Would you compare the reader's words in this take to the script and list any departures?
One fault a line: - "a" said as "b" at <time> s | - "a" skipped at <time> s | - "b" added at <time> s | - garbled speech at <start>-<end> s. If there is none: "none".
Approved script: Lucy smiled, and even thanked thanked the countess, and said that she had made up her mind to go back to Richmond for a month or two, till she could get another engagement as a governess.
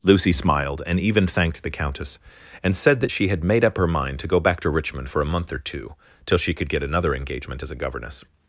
- "thanked" skipped at 1.6 s